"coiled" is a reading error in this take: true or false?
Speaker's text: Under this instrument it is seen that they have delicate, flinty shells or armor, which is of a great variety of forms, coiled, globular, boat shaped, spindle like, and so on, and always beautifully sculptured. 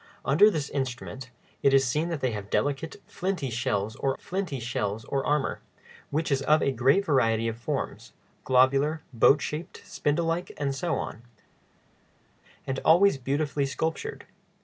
true